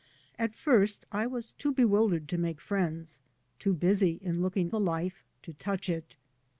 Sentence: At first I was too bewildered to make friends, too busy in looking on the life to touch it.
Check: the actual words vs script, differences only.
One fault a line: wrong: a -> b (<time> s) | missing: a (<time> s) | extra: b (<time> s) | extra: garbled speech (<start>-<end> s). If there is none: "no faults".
missing: on (4.7 s)